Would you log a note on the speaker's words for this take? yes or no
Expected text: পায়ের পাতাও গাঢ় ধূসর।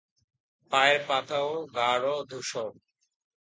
no